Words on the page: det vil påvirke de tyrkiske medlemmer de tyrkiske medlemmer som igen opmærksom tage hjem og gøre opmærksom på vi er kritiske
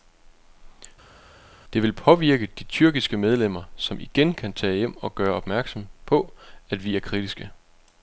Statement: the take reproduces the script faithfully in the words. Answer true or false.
false